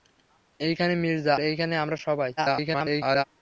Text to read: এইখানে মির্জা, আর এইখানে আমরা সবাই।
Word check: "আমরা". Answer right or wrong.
right